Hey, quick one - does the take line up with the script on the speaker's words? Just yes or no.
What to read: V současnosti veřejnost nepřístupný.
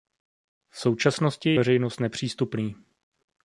yes